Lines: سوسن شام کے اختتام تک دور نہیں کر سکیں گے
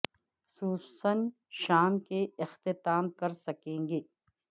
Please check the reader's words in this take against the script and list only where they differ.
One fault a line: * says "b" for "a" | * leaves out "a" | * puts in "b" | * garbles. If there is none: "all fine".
* leaves out "تک دور نہیں"